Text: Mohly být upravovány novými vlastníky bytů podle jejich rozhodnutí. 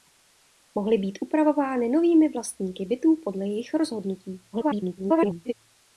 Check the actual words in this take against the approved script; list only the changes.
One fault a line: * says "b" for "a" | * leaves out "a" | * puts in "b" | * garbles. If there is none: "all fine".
* garbles